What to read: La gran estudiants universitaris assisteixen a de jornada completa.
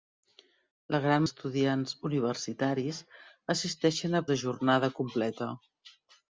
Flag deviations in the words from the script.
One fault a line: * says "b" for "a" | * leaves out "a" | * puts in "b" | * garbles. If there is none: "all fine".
all fine